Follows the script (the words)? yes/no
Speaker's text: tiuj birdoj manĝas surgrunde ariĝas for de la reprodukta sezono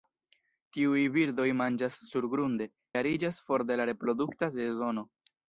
yes